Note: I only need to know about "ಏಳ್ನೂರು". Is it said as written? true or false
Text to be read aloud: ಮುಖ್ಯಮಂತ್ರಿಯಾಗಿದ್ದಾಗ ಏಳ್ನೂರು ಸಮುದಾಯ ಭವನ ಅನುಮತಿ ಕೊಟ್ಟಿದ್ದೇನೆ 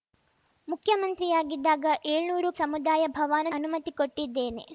true